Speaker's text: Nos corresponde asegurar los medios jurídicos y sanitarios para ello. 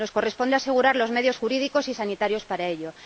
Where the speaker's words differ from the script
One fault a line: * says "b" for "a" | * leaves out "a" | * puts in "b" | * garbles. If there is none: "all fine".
all fine